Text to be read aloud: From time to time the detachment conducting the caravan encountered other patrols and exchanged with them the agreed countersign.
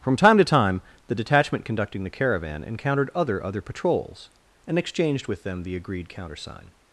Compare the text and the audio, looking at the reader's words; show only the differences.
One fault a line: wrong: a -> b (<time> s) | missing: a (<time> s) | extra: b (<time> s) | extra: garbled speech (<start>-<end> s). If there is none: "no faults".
extra: other (3.4 s)